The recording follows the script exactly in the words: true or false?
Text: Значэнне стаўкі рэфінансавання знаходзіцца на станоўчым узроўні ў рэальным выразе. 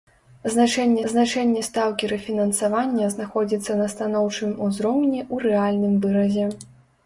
false